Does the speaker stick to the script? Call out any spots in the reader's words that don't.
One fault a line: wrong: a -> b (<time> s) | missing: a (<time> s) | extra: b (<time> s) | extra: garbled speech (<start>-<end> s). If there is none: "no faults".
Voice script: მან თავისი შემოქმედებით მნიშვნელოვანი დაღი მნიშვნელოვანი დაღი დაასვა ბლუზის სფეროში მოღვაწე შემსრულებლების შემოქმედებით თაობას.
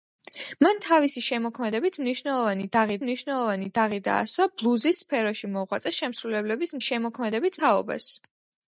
no faults